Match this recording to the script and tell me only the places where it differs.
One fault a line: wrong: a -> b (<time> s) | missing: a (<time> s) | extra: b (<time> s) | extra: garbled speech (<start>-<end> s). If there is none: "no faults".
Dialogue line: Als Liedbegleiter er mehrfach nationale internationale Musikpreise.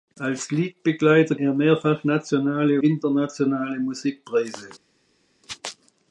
no faults